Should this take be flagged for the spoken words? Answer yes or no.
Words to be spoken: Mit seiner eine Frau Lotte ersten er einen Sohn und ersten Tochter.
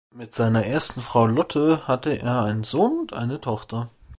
yes